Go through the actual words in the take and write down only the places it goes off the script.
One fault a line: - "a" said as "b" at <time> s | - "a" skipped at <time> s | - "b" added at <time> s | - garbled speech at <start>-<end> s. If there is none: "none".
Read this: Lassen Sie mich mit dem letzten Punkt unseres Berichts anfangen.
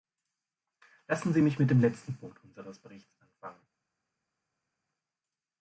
none